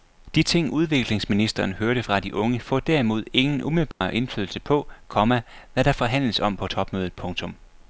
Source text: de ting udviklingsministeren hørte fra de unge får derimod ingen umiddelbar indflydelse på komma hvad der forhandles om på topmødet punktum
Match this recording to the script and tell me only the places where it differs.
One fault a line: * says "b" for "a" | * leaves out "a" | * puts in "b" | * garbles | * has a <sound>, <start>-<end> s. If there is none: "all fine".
* has a dropout, 3.9-4.0 s